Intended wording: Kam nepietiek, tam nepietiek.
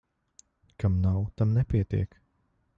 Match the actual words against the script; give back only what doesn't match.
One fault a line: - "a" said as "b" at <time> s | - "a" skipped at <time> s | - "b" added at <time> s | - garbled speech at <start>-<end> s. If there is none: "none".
- "nepietiek" said as "nav" at 1.0 s